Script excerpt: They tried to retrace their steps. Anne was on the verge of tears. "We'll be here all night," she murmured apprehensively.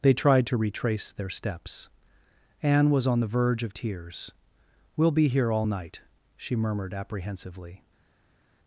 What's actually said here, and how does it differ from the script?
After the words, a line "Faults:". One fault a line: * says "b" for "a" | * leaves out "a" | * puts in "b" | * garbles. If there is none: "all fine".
They tried to retrace their steps. Anne was on the verge of tears. "We'll be here all night," she murmured apprehensively.
Faults:
all fine